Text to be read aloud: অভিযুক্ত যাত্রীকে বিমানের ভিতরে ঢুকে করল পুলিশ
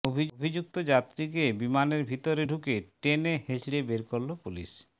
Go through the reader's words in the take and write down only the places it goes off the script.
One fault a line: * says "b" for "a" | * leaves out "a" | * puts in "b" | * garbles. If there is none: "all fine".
* puts in "টেনে হিঁচড়ে বের"